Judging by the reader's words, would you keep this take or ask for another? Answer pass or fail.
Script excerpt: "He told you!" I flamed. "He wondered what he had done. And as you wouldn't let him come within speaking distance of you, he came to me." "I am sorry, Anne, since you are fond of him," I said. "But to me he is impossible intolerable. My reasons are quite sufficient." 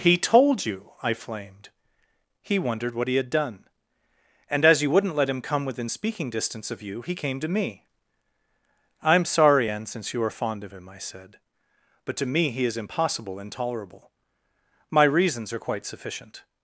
pass